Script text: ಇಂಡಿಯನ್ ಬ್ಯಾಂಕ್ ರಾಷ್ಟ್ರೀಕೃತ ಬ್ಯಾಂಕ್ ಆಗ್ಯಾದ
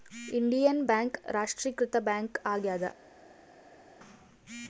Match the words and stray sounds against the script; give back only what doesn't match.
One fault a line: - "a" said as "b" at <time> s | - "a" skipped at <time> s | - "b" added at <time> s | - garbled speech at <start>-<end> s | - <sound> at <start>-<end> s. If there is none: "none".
none